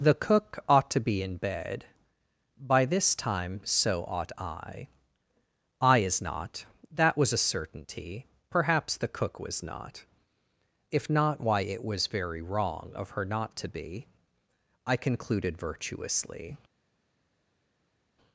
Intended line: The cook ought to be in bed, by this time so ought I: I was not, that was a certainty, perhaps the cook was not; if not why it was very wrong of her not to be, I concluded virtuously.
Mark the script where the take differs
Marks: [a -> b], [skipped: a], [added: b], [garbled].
The cook ought to be in bed, by this time so ought I: I [was -> is] not, that was a certainty, perhaps the cook was not; if not why it was very wrong of her not to be, I concluded virtuously.